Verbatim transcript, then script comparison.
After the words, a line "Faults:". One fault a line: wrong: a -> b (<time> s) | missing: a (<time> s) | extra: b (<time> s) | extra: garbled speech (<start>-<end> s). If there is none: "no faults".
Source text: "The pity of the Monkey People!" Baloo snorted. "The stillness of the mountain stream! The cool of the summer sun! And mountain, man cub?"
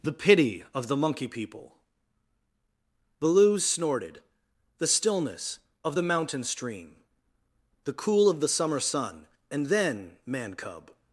"The pity of the Monkey People!" Baloo snorted. "The stillness of the mountain stream! The cool of the summer sun! And then, man cub?"
Faults:
wrong: mountain -> then (9.7 s)